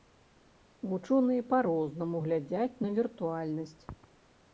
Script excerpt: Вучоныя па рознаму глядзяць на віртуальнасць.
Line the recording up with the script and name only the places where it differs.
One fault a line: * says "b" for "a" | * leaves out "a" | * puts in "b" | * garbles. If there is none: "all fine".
all fine